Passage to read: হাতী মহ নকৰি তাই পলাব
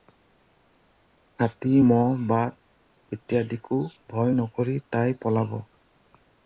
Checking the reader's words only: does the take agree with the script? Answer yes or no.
no